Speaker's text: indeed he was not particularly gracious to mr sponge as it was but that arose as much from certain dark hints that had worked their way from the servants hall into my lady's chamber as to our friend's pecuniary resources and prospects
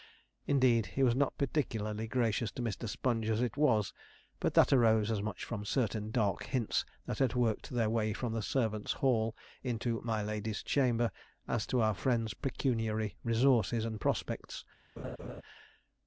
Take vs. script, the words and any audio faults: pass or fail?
fail